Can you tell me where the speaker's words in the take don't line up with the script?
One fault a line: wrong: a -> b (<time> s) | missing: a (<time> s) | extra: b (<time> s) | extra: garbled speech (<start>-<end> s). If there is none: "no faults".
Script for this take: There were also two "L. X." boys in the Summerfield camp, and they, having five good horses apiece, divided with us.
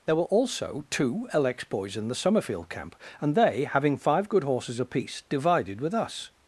no faults